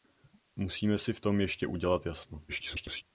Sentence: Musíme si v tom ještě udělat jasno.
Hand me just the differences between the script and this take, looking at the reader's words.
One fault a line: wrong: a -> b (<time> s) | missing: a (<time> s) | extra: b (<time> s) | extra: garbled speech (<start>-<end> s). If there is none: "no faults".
extra: garbled speech (2.5-3.0 s)